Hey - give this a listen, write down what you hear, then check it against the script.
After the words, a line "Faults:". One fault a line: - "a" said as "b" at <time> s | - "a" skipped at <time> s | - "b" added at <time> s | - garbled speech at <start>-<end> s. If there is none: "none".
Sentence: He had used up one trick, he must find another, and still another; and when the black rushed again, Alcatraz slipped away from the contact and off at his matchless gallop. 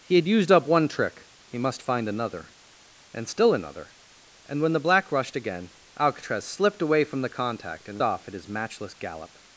He had used up one trick, he must find another, and still another; and when the black rushed again, Alcatraz slipped away from the contact and off at his matchless gallop.
Faults:
none